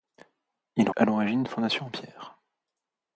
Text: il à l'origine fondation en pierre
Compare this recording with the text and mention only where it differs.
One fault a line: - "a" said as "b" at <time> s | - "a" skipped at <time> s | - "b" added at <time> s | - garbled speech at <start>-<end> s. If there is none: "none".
none